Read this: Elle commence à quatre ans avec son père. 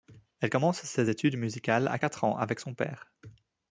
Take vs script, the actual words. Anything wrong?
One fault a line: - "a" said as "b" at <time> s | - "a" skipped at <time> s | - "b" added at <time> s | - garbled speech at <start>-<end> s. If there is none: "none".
- "ses études musicales" added at 0.8 s